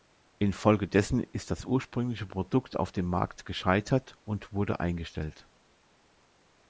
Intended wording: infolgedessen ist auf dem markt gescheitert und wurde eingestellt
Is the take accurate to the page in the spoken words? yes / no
no